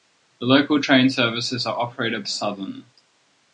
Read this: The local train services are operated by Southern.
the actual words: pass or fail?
fail